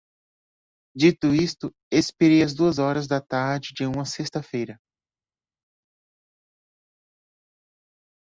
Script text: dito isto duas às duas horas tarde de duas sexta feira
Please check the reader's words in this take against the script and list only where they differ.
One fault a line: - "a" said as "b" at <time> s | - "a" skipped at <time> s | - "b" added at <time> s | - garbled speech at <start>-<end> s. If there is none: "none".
- "duas" said as "expirei" at 1.9 s
- "da" added at 3.1 s
- "duas" said as "uma" at 3.8 s